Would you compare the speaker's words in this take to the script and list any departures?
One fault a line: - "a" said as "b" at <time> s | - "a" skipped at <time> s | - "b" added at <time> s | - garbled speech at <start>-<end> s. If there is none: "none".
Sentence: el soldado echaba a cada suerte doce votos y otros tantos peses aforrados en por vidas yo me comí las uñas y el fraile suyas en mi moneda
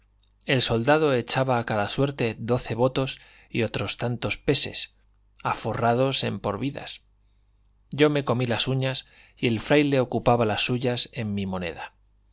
- "ocupaba las" added at 10.0 s